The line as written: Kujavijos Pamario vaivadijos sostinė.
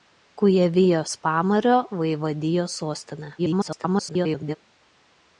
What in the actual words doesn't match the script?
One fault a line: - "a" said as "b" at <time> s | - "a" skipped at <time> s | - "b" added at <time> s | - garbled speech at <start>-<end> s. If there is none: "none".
- garbled speech at 3.4-4.6 s